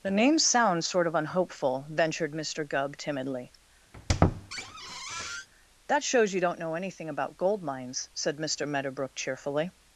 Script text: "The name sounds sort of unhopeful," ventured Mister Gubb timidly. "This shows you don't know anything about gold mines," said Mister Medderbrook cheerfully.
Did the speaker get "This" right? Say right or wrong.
wrong